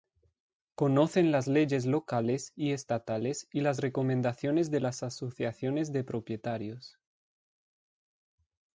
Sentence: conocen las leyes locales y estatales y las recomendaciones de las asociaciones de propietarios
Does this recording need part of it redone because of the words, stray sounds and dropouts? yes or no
no